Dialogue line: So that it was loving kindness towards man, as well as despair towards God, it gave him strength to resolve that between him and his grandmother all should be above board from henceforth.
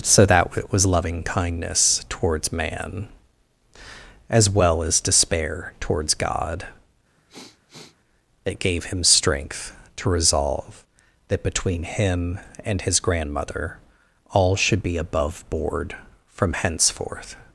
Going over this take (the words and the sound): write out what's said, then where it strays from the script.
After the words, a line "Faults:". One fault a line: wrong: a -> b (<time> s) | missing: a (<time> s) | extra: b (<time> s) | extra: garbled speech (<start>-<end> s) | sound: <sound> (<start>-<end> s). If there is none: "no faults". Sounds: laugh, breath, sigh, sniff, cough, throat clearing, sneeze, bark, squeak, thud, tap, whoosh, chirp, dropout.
So that it was loving kindness towards man, as well as despair towards God, it gave him strength to resolve that between him and his grandmother all should be above board from henceforth.
Faults:
sound: sniff (7.2-8.0 s)